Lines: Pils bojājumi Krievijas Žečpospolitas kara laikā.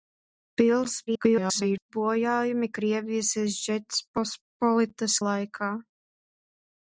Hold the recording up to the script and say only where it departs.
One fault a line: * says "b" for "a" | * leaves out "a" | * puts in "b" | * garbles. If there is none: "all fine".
* garbles
* leaves out "kara"